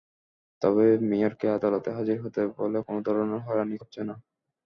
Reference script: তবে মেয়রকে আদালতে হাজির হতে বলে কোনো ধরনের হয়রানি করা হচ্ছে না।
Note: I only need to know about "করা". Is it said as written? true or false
false